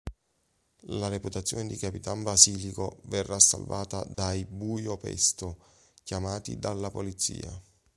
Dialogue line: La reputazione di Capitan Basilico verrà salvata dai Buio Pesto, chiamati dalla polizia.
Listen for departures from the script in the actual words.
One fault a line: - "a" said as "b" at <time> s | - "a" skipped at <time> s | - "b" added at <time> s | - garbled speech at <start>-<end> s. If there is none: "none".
none